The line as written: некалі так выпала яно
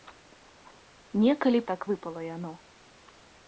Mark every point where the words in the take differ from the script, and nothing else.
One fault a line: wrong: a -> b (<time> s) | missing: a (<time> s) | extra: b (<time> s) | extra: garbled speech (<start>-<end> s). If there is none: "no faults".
no faults